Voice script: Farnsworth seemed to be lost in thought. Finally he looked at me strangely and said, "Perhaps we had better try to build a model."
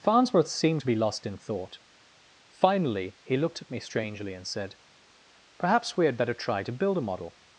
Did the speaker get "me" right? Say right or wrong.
right